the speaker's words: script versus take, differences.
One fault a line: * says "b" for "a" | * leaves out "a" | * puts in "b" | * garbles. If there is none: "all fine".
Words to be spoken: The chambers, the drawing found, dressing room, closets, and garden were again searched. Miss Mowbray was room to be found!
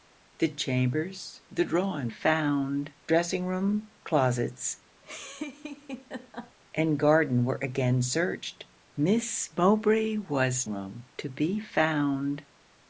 all fine